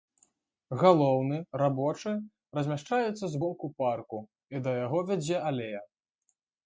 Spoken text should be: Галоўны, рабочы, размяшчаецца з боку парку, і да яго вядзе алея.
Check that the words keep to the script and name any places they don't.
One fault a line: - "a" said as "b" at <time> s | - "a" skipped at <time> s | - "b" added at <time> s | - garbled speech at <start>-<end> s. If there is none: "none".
none